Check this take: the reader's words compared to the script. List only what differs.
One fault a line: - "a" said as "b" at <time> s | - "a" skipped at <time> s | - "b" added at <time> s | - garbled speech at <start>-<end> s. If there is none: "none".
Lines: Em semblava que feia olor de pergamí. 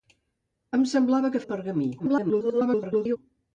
- "feia olor" skipped at 1.4 s
- garbled speech at 2.0-3.2 s